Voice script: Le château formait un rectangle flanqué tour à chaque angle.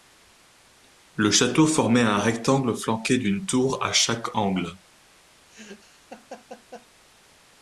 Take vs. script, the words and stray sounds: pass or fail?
fail